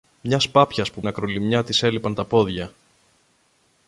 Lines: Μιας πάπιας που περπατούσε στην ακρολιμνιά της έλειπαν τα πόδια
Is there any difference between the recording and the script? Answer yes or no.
yes